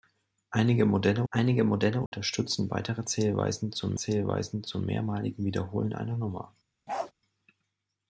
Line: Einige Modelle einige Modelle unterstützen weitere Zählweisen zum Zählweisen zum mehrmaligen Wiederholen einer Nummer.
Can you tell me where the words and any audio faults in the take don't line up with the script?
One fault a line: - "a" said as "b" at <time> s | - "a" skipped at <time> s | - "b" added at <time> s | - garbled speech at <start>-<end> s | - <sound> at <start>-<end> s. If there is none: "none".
- dropout at 2.1-2.1 s
- bark at 6.9-7.1 s